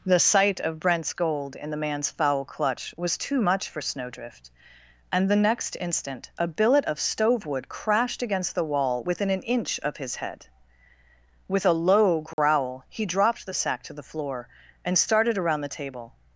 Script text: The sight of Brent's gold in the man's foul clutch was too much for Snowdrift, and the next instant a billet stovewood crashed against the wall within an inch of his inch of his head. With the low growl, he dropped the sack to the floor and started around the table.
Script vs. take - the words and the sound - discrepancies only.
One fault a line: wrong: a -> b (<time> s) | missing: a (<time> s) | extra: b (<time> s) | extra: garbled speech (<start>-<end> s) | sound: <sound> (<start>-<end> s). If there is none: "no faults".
extra: of (6.8 s)
missing: inch of his (10.1 s)
wrong: the -> a (11.6 s)
sound: dropout (12.3-12.4 s)